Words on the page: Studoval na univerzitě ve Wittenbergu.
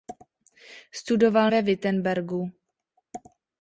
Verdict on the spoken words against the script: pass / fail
fail